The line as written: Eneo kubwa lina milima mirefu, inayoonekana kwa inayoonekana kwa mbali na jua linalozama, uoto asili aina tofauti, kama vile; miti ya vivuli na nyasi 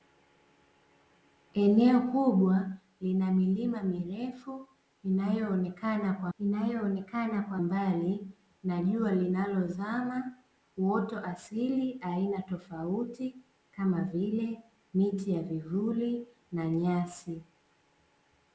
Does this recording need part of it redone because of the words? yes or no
no